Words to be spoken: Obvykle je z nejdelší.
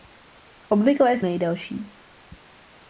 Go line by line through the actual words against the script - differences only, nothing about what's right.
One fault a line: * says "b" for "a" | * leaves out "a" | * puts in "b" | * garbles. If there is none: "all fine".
all fine